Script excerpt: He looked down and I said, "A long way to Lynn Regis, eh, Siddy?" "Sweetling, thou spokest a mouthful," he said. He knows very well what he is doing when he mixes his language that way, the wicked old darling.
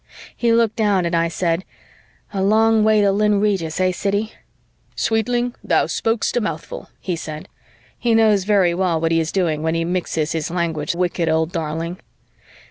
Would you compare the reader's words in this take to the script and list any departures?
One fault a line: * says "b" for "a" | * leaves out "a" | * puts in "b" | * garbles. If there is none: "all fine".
* leaves out "that way the"